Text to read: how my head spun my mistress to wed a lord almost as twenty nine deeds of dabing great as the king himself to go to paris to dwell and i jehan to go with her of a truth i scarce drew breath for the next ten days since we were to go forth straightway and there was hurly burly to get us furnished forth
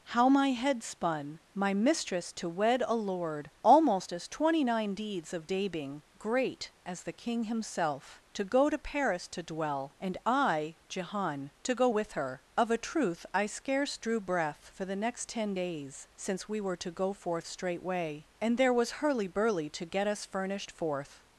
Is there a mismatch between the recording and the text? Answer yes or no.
no